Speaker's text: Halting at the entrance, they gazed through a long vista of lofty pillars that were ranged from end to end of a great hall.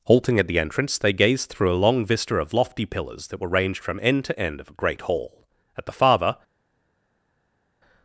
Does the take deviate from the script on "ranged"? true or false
false